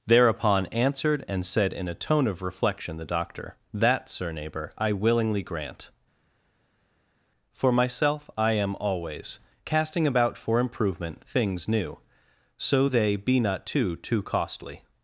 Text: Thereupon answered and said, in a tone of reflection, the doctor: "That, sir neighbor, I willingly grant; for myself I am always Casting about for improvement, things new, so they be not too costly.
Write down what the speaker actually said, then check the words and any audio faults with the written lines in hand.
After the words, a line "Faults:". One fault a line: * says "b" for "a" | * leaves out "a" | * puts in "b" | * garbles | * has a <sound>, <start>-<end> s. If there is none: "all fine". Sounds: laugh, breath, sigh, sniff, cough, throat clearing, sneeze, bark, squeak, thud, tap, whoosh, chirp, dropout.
Thereupon answered and said, in a tone of reflection, the doctor: "That, sir neighbor, I willingly grant; for myself I am always Casting about for improvement, things new, so they be not too too costly.
Faults:
* puts in "too"